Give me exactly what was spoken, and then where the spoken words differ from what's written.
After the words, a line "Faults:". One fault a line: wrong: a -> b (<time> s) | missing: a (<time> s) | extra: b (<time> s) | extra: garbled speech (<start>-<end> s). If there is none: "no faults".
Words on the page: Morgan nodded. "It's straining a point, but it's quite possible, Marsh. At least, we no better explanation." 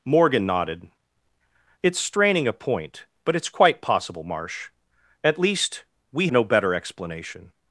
Morgan nodded. "It's straining a point, but it's quite possible, Marsh. At least, we no better explanation."
Faults:
no faults